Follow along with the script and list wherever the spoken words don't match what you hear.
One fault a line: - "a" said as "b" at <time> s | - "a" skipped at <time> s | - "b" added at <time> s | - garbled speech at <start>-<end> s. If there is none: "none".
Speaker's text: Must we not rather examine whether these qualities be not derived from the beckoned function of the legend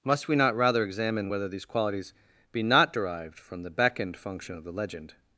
none